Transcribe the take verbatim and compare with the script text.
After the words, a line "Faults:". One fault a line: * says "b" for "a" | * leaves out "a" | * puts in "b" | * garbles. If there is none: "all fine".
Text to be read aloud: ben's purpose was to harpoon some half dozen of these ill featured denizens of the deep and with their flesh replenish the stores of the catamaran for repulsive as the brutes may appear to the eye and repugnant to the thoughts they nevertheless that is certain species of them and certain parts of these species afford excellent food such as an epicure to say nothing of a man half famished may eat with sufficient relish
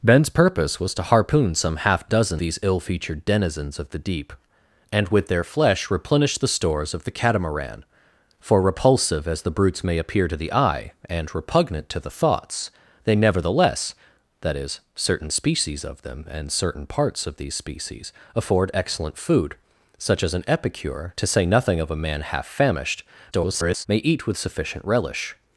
ben's purpose was to harpoon some half dozen these ill featured denizens of the deep and with their flesh replenish the stores of the catamaran for repulsive as the brutes may appear to the eye and repugnant to the thoughts they nevertheless that is certain species of them and certain parts of these species afford excellent food such as an epicure to say nothing of a man half famished [garbled] may eat with sufficient relish
Faults:
* leaves out "of"
* garbles